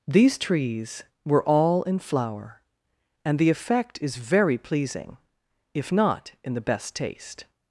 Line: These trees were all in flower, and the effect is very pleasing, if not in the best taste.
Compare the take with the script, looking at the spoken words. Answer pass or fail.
pass